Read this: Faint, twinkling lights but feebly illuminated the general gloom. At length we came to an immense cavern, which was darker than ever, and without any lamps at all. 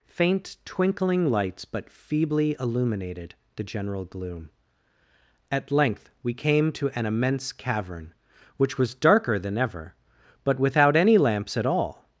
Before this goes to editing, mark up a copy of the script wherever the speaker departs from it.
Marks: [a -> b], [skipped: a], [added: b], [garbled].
Faint, twinkling lights but feebly illuminated the general gloom. At length we came to an immense cavern, which was darker than ever, [and -> but] without any lamps at all.